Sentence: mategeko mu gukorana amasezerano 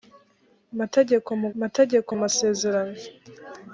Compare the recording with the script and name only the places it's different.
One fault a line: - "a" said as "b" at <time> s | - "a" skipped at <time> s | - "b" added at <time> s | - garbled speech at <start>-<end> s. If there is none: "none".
- "gukorana" said as "mategeko" at 1.6 s